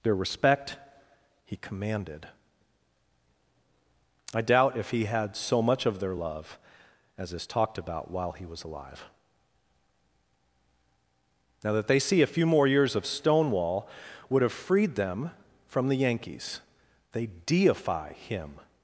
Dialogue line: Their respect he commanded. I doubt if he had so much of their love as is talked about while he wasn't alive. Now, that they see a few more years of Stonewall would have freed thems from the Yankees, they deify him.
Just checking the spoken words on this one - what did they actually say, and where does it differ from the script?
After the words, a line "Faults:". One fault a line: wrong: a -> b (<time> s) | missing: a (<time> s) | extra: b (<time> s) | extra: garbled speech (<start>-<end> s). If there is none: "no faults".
Their respect he commanded. I doubt if he had so much of their love as is talked about while he was alive. Now, that they see a few more years of Stonewall would have freed them from the Yankees, they deify him.
Faults:
wrong: wasn't -> was (8.5 s)
wrong: thems -> them (15.0 s)